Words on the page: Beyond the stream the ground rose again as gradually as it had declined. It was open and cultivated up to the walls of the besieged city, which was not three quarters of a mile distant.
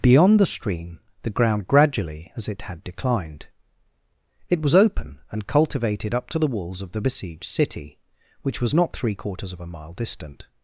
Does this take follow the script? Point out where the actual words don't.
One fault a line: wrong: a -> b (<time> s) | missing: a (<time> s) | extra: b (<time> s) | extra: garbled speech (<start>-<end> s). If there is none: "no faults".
missing: rose again as (1.7 s)